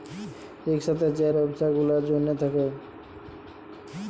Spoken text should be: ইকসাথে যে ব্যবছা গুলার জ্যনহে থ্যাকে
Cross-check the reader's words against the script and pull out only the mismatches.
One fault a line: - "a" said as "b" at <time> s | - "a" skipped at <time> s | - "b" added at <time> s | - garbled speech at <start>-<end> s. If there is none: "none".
none